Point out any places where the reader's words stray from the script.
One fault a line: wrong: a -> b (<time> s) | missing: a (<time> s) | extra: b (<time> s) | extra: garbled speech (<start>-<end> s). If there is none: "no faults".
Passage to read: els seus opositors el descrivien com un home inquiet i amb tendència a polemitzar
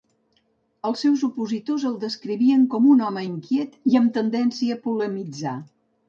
no faults